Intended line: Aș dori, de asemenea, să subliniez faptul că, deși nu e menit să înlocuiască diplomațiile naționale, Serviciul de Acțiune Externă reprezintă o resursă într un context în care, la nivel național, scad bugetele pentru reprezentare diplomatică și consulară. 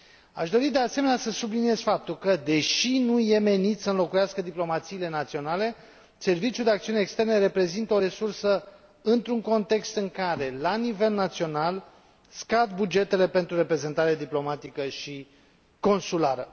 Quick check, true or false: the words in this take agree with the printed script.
true